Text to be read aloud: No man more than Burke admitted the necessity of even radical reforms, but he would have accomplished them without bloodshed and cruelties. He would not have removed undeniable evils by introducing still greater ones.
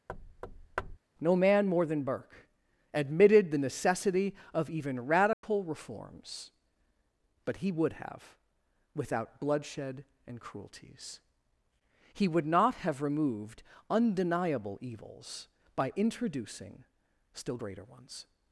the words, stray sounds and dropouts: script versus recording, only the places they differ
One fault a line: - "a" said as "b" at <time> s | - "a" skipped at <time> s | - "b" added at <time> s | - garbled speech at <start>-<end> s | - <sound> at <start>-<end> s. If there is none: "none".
- thud at 0.1-1.0 s
- dropout at 5.3-5.4 s
- "accomplished them" skipped at 8.4 s